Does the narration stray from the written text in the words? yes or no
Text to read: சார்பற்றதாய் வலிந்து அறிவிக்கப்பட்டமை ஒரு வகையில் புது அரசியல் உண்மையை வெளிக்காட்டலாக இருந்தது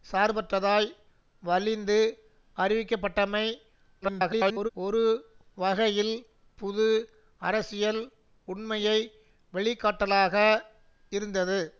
yes